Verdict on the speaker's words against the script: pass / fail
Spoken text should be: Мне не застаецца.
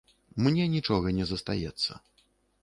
fail